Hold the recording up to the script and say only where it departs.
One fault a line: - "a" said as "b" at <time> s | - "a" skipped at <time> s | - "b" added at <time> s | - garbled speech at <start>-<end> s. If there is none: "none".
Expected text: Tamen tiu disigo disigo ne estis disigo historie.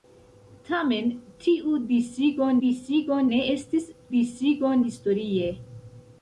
none